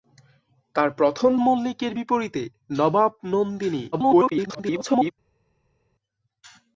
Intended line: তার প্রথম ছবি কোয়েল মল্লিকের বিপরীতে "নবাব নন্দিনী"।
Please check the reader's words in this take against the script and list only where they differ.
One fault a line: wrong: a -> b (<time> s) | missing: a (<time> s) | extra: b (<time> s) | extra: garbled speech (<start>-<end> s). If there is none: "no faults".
missing: ছবি কোয়েল (1.3 s)
extra: garbled speech (3.9-5.1 s)